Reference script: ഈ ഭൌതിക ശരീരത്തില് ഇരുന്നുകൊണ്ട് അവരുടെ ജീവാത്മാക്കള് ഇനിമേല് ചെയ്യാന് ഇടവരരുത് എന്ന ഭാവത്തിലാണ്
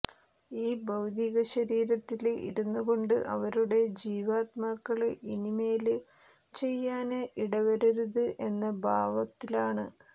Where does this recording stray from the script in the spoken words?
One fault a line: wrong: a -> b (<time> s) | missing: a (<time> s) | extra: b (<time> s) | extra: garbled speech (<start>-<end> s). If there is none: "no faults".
no faults